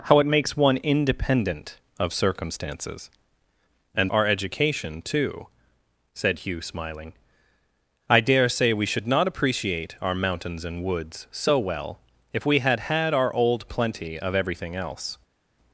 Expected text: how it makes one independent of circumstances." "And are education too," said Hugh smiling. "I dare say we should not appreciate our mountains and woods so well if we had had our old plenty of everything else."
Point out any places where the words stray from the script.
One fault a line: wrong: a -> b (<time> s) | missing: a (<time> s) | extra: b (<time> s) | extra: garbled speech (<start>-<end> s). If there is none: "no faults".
no faults